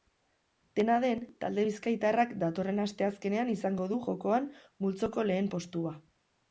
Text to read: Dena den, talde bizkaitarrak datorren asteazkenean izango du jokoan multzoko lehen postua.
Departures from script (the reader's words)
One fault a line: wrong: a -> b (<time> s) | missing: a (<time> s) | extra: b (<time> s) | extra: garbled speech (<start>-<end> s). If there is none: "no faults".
no faults